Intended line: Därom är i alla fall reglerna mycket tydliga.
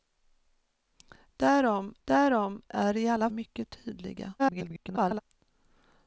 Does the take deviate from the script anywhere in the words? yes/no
yes